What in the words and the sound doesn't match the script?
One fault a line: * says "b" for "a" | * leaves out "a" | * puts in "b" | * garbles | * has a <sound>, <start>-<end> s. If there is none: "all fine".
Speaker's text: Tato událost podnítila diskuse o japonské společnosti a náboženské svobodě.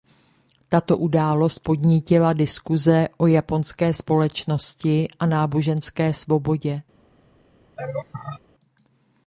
* has a laugh, 7.8-8.4 s